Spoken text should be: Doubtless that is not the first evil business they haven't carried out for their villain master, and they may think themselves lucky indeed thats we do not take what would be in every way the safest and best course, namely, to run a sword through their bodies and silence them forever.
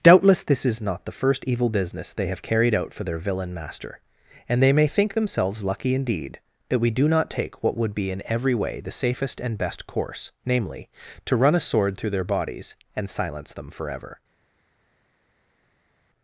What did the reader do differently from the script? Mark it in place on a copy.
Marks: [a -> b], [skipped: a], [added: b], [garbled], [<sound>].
Doubtless [that -> this] is not the first evil business they [haven't -> have] carried out for their villain master, and they may think themselves lucky indeed [thats -> that] we do not take what would be in every way the safest and best course, namely, to run a sword through their bodies and silence them forever.